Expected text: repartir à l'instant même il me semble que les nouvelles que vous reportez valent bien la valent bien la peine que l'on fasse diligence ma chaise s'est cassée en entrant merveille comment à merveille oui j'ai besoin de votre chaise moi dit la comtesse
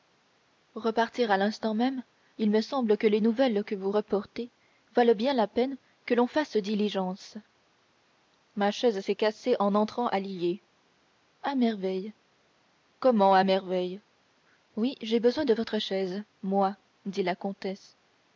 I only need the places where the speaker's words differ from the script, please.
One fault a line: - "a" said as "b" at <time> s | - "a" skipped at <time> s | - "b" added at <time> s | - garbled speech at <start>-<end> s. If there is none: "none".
- "valent bien la" skipped at 5.4 s
- "à lillers à" added at 10.1 s